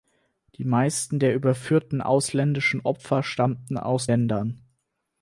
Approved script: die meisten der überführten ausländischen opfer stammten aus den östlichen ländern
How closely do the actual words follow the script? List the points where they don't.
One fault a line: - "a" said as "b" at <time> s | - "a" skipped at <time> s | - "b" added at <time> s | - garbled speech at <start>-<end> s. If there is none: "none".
- "den östlichen" skipped at 4.1 s